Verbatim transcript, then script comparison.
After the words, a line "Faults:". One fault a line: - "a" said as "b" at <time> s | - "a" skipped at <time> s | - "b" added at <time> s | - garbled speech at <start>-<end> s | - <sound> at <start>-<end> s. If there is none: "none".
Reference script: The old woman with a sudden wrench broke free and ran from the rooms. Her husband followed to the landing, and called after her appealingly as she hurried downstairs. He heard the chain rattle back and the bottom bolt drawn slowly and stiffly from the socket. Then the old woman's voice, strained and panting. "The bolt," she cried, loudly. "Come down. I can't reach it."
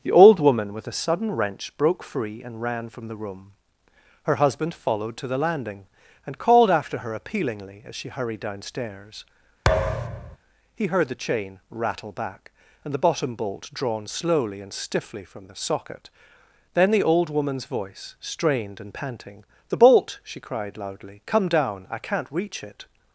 The old woman with a sudden wrench broke free and ran from the room. Her husband followed to the landing, and called after her appealingly as she hurried downstairs. He heard the chain rattle back and the bottom bolt drawn slowly and stiffly from the socket. Then the old woman's voice, strained and panting. "The bolt," she cried, loudly. "Come down. I can't reach it."
Faults:
- "rooms" said as "room" at 3.2 s
- thud at 9.6-10.4 s